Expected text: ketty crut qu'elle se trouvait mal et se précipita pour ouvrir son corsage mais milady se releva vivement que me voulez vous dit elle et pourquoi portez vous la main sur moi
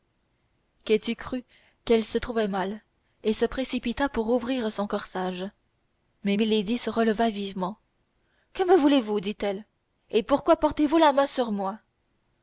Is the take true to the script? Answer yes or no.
yes